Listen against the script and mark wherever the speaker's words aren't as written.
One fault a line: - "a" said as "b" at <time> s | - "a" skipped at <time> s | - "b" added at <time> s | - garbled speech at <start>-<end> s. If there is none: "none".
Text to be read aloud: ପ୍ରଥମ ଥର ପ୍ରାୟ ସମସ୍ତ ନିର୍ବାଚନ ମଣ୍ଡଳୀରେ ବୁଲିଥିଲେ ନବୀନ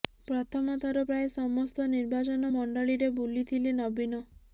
none